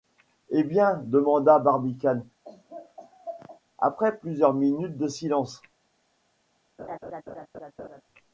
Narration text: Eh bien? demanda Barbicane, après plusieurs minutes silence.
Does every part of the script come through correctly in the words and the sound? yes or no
no